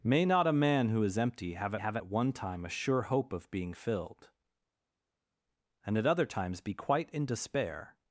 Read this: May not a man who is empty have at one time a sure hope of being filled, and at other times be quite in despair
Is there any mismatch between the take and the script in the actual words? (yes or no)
yes